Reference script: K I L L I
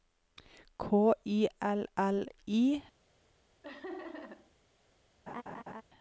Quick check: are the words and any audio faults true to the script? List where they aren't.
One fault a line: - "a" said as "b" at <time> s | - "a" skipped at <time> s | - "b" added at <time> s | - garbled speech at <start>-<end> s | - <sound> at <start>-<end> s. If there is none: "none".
- laugh at 3.6-4.5 s
- laugh at 5.3-5.8 s